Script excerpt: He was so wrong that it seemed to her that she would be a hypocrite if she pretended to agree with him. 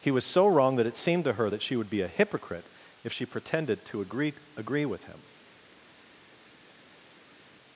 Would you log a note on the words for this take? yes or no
yes